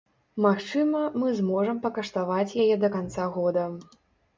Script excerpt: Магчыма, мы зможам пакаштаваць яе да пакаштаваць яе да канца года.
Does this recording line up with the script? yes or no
no